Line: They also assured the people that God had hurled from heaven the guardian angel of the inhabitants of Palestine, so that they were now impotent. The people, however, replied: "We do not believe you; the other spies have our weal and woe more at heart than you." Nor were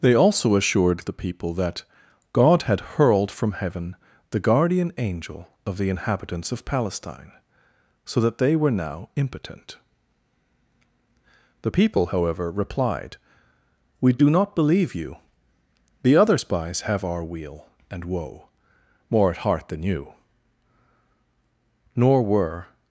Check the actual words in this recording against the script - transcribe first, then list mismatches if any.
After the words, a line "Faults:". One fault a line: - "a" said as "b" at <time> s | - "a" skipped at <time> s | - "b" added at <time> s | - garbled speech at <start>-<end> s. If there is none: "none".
They also assured the people that God had hurled from heaven the guardian angel of the inhabitants of Palestine, so that they were now impotent. The people, however, replied: "We do not believe you; the other spies have our weal and woe more at heart than you." Nor were
Faults:
none